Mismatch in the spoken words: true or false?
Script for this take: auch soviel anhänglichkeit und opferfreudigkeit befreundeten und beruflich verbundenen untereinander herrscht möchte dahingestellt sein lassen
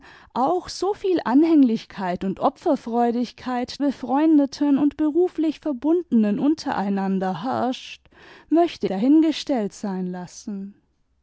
false